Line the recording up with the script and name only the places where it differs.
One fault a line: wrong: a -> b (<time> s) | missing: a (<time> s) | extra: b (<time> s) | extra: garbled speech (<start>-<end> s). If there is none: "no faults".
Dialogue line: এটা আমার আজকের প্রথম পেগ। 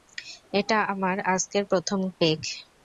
no faults